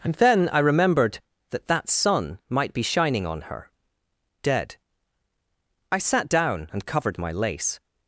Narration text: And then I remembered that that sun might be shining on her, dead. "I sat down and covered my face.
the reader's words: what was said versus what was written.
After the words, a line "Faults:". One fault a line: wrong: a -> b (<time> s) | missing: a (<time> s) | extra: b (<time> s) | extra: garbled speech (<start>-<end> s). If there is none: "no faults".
And then I remembered that that sun might be shining on her, dead. "I sat down and covered my lace.
Faults:
wrong: face -> lace (7.3 s)